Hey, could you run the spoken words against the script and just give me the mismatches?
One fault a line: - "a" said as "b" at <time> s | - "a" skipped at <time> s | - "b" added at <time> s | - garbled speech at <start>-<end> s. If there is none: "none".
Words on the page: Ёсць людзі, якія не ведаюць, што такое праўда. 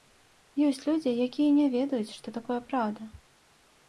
none